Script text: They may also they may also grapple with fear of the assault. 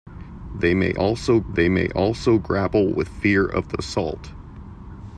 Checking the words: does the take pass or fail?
pass